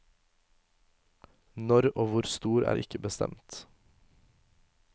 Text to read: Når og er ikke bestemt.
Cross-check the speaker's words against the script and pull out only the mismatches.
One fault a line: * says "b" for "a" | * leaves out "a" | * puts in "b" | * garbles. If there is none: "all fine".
* puts in "hvor stor"